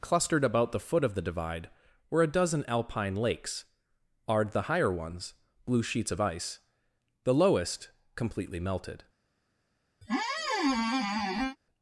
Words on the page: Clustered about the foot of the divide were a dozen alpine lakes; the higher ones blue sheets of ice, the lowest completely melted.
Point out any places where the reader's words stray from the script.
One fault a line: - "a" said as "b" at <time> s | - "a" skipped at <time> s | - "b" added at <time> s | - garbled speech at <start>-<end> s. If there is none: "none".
- "ard" added at 4.3 s